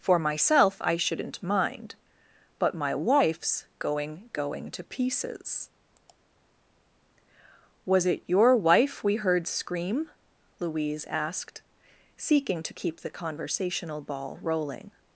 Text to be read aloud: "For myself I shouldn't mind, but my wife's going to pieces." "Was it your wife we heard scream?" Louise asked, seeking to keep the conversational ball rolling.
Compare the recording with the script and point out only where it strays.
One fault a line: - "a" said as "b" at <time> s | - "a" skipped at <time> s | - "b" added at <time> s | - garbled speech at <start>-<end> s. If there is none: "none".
- "going" added at 4.3 s